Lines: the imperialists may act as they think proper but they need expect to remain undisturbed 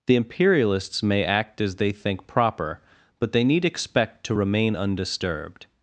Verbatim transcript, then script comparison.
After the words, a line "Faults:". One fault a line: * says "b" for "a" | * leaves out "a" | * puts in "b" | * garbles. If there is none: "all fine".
the imperialists may act as they think proper but they need expect to remain undisturbed
Faults:
all fine